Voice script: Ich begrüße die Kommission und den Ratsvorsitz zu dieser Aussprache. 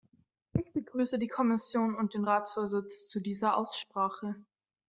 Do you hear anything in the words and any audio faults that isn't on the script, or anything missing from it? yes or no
no